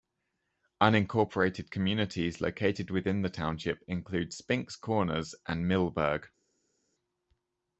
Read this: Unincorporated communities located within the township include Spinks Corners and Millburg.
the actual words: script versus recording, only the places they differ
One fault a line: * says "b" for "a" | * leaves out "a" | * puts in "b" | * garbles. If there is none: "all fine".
all fine